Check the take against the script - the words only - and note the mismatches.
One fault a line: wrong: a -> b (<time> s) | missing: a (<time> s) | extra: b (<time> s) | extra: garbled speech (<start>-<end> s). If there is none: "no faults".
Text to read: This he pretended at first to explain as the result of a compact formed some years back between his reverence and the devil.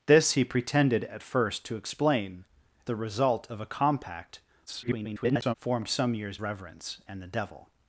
missing: as (2.5 s)
extra: garbled speech (4.7-5.5 s)
missing: back between his (6.4 s)